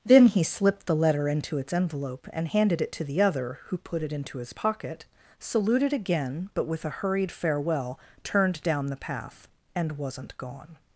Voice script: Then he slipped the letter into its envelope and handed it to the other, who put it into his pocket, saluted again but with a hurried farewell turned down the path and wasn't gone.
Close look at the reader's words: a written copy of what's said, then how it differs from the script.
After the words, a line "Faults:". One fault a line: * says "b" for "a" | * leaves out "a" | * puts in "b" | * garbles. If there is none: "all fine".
Then he slipped the letter into its envelope and handed it to the other, who put it into his pocket, saluted again but with a hurried farewell turned down the path and wasn't gone.
Faults:
all fine